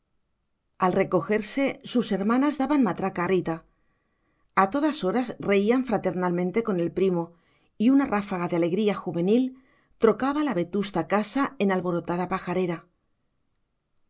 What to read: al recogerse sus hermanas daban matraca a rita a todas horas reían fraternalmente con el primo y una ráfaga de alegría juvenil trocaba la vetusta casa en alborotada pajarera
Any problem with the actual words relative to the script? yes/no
no